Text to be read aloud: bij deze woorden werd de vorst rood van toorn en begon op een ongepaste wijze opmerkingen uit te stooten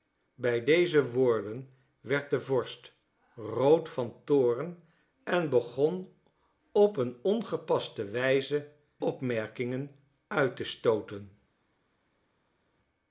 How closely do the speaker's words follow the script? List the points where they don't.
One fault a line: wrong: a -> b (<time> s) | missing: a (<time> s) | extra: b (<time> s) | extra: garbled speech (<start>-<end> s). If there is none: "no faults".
no faults